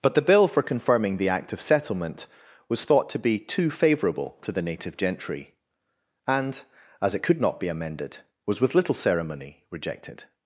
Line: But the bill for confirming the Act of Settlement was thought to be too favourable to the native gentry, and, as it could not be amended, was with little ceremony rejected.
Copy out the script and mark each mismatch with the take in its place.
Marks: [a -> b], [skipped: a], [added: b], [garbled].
But the bill for confirming the Act of Settlement was thought to be too favourable to the native gentry, and, as it could not be amended, was with little ceremony rejected.